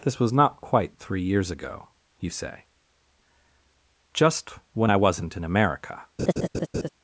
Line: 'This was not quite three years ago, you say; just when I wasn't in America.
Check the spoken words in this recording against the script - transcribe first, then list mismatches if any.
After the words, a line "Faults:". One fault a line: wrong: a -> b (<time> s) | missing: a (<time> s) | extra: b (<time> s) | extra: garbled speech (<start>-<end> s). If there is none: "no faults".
'This was not quite three years ago, you say; just when I wasn't in America.
Faults:
no faults